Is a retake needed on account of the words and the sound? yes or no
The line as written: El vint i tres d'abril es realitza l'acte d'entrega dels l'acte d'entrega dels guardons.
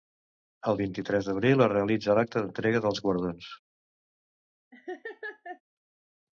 yes